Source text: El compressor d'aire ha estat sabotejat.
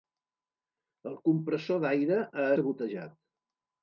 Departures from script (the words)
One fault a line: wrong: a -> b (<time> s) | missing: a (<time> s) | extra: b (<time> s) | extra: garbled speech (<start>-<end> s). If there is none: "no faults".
missing: estat (2.5 s)